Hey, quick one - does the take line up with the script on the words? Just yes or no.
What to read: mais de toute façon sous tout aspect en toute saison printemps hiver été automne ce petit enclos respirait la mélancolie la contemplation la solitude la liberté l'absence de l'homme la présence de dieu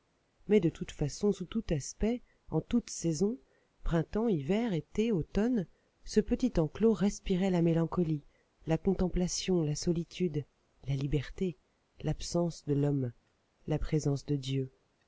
yes